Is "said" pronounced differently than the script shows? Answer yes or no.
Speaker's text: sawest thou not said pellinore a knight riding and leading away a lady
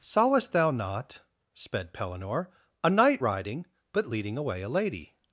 yes